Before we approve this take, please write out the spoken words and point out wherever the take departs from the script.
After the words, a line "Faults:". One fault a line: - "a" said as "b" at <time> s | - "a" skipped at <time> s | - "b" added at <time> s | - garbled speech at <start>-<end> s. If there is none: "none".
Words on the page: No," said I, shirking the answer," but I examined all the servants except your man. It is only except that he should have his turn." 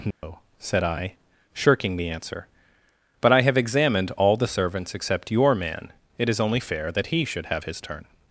No," said I, shirking the answer," but I have examined all the servants except your man. It is only fair that he should have his turn."
Faults:
- "have" added at 3.4 s
- "except" said as "fair" at 6.6 s